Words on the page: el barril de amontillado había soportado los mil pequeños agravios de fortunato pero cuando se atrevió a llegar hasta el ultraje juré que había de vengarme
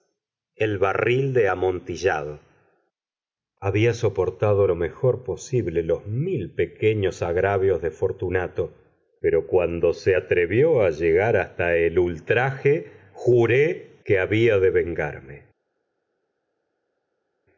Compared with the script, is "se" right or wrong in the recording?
right